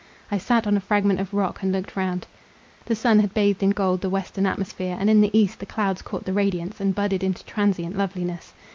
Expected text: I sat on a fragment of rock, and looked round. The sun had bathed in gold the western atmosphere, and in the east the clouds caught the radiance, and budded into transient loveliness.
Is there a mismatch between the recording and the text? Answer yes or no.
no